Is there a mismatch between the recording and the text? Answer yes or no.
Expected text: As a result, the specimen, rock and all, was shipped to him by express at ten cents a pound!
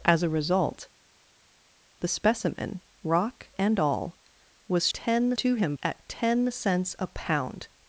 yes